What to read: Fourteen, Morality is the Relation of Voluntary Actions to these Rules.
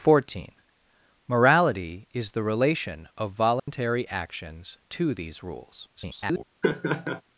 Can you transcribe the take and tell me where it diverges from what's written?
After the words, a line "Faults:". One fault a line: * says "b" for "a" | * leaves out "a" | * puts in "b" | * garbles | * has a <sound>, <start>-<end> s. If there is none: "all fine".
Fourteen, Morality is the Relation of Voluntary Actions to these Rules. [garbled]
Faults:
* has a dropout, 3.6-3.7 s
* garbles
* has a laugh, 6.6-7.2 s